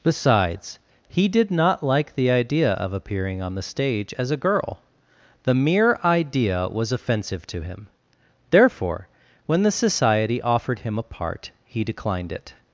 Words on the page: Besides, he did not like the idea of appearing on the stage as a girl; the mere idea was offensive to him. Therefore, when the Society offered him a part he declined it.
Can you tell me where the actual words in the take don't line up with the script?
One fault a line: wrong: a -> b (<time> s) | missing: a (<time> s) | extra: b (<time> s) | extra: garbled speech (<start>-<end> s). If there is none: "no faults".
no faults